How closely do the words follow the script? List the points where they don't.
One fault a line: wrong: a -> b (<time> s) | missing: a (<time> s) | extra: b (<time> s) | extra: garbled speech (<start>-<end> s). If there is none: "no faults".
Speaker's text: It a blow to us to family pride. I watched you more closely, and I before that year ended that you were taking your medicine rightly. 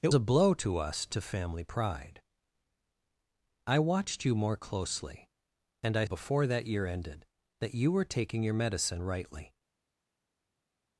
no faults